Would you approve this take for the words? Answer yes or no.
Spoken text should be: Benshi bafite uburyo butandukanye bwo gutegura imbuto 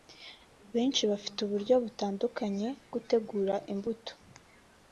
no